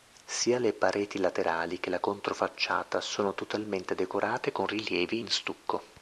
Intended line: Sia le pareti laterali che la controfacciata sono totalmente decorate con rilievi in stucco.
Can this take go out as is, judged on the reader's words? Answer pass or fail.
pass